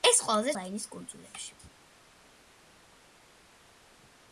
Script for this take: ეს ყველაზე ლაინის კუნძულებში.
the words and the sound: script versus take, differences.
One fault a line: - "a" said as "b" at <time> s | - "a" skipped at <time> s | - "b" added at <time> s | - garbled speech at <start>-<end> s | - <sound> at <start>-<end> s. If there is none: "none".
none